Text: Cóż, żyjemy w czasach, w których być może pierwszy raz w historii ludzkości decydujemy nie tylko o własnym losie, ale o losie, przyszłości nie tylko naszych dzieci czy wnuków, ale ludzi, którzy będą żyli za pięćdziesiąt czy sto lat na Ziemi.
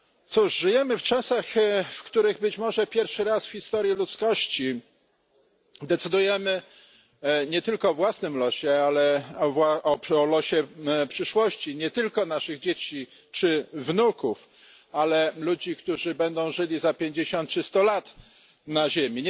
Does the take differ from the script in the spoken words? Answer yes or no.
no